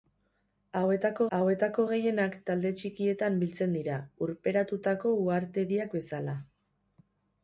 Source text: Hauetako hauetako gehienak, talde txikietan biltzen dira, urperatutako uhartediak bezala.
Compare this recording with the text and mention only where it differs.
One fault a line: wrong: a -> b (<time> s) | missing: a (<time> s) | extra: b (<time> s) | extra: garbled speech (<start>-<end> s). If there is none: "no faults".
no faults